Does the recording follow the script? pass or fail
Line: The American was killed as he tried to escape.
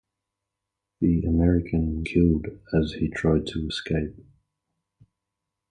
fail